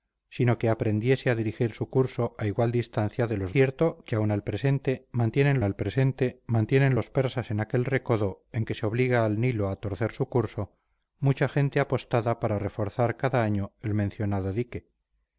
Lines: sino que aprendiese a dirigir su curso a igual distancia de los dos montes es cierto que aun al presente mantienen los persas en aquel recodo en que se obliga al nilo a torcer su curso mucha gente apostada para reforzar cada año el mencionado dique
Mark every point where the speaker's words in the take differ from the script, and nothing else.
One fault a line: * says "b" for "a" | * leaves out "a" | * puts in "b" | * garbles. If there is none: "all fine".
* says "cierto que aun al presente mantienen" for "dos montes es cierto que aun"